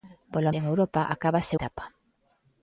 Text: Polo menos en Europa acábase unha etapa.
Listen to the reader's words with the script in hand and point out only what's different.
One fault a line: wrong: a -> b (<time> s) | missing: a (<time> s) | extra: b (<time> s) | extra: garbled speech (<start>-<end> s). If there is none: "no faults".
missing: menos (0.5 s)
missing: unha (1.5 s)